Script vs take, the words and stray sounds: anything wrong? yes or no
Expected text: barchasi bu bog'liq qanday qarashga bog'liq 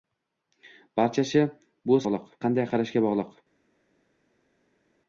no